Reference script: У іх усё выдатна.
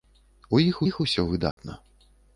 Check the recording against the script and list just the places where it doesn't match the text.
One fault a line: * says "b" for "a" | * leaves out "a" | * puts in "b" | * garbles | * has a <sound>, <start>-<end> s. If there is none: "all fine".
* puts in "іх"
* has a dropout, 1.5-1.6 s